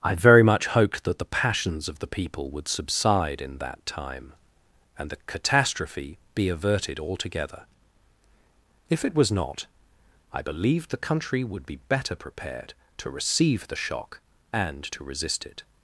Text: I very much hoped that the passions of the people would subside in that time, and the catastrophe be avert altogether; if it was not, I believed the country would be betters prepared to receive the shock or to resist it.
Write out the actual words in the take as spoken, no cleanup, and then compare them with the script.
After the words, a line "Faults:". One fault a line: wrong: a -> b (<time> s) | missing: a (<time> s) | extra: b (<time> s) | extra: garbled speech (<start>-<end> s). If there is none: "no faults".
I very much hoped that the passions of the people would subside in that time, and the catastrophe be averted altogether; if it was not, I believed the country would be better prepared to receive the shock and to resist it.
Faults:
wrong: avert -> averted (6.5 s)
wrong: betters -> better (11.9 s)
wrong: or -> and (14.5 s)